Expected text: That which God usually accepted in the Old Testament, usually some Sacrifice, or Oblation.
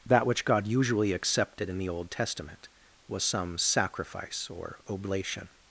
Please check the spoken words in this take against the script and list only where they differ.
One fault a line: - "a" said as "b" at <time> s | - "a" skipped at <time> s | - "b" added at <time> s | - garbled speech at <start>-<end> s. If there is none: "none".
- "usually" said as "was" at 3.1 s